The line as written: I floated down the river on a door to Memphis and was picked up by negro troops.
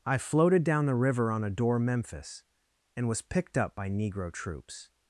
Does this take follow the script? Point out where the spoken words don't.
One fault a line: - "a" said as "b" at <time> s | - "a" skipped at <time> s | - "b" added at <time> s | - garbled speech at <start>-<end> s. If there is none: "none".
- "to" skipped at 1.8 s